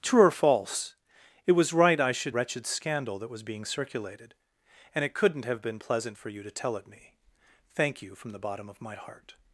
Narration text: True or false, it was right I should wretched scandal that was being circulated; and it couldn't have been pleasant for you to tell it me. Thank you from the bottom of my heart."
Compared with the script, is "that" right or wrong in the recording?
right